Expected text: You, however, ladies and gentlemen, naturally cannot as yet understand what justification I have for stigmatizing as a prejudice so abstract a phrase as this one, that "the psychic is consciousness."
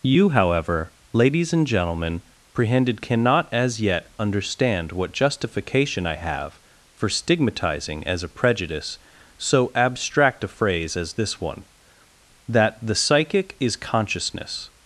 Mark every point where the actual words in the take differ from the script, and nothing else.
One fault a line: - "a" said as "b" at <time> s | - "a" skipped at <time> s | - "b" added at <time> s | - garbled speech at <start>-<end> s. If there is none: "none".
- "naturally" said as "prehended" at 2.5 s